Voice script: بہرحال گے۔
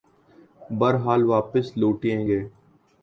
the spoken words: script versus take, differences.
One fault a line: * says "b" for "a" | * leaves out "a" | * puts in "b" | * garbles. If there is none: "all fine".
* puts in "واپس لوٹیں"